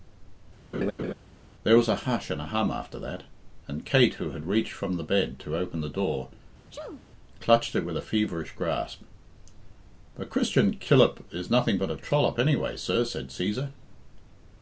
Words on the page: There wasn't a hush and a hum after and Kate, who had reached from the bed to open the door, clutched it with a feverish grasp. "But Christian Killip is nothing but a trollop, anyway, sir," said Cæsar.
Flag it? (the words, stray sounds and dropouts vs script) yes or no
yes